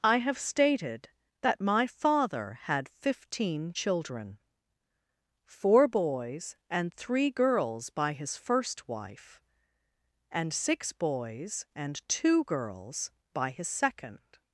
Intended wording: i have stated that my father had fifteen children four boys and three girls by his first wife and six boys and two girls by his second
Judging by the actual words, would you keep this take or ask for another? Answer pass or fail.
pass